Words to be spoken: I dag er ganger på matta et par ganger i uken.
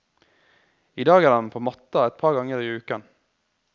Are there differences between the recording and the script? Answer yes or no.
yes